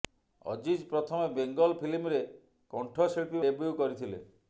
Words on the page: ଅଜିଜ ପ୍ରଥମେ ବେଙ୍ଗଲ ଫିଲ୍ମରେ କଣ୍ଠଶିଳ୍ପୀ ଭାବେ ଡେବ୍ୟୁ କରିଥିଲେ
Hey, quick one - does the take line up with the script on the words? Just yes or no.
no